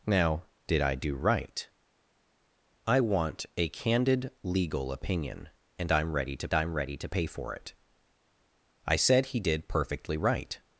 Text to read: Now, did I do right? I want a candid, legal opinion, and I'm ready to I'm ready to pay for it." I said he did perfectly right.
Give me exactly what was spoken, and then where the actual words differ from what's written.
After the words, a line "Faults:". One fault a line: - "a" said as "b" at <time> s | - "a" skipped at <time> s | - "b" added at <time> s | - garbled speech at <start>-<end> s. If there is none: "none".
Now, did I do right? I want a candid, legal opinion, and I'm ready to I'm ready to pay for it." I said he did perfectly right.
Faults:
none